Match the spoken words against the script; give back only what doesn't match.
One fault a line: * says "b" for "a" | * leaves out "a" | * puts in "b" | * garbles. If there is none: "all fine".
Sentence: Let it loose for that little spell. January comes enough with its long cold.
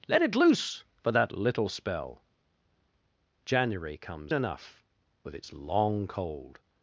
all fine